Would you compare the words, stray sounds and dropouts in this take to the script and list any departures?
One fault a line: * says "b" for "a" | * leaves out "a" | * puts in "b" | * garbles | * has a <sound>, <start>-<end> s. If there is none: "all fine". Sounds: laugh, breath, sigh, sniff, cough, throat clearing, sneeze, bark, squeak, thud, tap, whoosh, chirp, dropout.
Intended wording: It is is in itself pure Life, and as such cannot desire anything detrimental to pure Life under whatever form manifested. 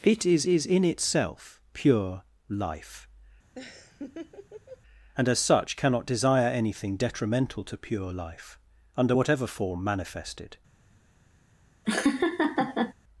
* has a laugh, 3.5-4.8 s
* has a laugh, 11.8-12.9 s